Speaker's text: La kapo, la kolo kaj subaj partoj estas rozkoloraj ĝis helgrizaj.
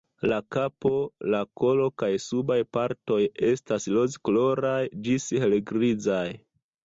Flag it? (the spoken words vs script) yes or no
no